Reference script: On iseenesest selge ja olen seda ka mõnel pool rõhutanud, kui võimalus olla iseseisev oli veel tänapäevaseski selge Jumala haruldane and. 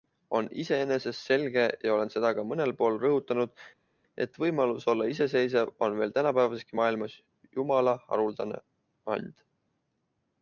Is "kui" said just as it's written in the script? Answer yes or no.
no